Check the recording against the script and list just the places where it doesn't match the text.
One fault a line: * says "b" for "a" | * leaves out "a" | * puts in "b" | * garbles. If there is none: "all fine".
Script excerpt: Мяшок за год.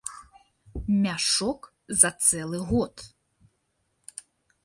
* puts in "цэлы"